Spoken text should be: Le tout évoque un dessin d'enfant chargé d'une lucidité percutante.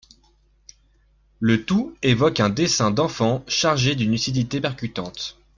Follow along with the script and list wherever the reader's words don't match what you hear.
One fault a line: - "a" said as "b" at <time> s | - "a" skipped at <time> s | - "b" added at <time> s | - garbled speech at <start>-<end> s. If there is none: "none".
none